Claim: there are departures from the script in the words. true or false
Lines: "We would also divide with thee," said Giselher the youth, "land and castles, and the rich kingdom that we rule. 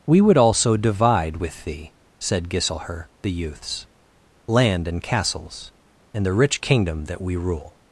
true